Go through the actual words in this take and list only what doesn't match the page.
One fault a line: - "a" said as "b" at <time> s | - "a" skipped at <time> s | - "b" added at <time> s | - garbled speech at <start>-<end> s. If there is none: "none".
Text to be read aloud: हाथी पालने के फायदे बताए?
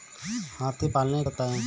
- "के फायदे" skipped at 1.2 s